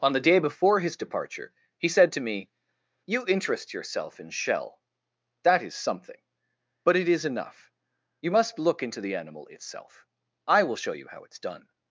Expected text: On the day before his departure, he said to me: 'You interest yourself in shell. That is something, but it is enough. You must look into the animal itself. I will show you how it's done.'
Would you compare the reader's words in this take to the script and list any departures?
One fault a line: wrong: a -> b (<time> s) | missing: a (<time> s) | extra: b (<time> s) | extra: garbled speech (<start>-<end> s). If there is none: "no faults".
no faults